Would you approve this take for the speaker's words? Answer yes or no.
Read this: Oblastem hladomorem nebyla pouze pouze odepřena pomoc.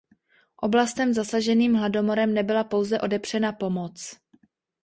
no